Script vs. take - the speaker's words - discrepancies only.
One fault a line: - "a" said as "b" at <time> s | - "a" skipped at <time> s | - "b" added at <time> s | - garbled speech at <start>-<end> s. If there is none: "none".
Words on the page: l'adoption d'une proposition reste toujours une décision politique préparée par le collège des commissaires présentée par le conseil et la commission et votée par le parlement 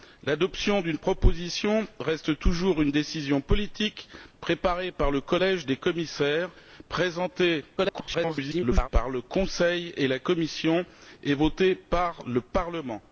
- garbled speech at 7.8-8.9 s